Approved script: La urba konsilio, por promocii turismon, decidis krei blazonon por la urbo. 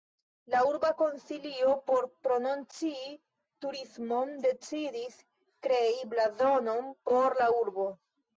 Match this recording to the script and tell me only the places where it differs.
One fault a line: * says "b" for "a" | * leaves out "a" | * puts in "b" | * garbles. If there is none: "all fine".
all fine